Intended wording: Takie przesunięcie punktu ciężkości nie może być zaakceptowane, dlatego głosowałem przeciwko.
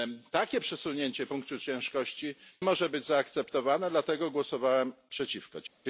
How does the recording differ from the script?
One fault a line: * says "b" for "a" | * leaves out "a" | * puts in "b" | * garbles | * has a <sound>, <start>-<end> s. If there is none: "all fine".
* leaves out "nie"